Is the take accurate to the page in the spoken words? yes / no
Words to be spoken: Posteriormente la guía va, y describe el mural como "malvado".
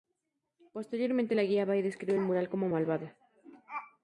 yes